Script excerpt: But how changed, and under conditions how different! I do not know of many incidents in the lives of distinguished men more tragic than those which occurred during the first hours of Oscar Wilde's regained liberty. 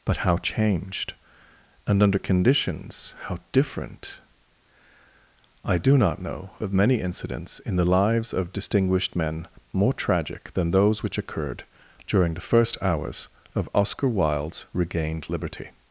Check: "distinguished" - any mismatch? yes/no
no